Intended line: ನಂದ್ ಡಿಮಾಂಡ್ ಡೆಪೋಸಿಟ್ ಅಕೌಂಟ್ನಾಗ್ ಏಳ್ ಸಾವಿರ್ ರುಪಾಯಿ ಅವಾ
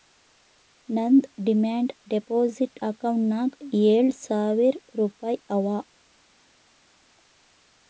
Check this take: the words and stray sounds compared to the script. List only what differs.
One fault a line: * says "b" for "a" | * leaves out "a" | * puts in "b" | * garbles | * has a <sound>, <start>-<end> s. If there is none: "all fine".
all fine